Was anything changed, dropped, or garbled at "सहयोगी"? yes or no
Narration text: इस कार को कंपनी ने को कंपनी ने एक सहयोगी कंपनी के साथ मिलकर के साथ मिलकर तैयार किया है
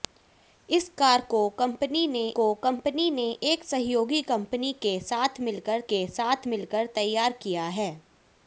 no